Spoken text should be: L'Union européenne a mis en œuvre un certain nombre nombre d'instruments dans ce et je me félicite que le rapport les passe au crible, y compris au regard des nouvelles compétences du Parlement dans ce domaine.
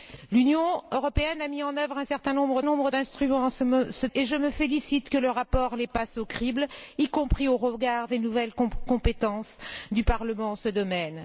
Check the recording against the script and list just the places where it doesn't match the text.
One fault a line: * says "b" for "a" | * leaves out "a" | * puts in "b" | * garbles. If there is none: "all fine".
all fine